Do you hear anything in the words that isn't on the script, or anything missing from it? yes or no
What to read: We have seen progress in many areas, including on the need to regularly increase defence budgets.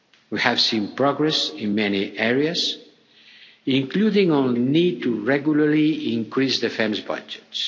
yes